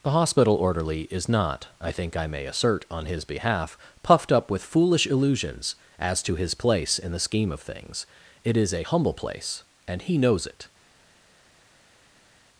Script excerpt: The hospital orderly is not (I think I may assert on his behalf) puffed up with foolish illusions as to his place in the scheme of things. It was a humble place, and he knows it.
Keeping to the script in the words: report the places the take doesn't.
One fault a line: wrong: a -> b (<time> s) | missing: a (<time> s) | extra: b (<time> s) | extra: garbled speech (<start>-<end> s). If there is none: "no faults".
wrong: was -> is (8.5 s)